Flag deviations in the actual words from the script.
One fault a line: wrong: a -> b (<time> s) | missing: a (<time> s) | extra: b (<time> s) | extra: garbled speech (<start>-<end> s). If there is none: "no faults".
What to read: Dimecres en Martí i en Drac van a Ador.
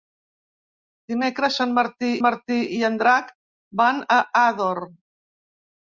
extra: Martí (2.2 s)